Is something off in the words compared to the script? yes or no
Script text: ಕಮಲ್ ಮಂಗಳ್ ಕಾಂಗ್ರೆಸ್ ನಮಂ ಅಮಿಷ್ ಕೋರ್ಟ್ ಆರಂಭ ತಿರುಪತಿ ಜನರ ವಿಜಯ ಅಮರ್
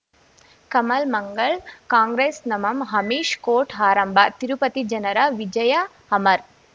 no